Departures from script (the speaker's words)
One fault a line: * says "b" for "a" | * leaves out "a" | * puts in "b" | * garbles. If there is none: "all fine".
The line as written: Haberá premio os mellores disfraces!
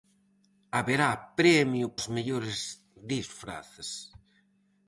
all fine